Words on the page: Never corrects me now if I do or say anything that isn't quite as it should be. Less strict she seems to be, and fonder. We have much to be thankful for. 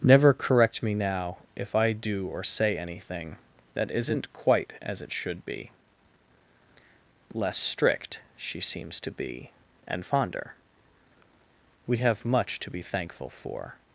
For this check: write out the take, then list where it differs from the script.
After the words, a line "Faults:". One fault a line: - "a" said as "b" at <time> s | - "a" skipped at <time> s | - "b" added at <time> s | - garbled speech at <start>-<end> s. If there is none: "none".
Never correct me now if I do or say anything that isn't quite as it should be. Less strict she seems to be, and fonder. We have much to be thankful for.
Faults:
- "corrects" said as "correct" at 0.3 s